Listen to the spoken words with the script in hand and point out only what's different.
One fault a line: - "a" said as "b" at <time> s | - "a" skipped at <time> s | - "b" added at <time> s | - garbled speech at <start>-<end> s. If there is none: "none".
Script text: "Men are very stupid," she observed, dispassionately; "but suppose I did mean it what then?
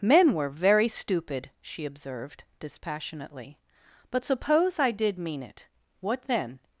- "are" said as "were" at 0.3 s